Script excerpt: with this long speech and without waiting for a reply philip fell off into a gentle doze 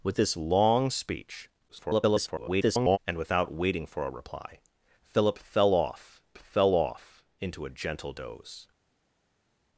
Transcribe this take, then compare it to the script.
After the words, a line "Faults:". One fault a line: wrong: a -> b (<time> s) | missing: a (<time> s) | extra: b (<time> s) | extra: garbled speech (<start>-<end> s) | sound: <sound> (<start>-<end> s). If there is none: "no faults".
with this long speech [garbled] and without waiting for a reply philip fell off fell off into a gentle doze
Faults:
extra: garbled speech (1.7-3.0 s)
extra: fell off (6.4 s)